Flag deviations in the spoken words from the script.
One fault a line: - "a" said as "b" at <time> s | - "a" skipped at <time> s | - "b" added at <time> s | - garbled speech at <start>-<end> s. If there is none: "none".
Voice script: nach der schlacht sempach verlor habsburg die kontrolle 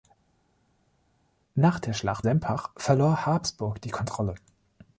none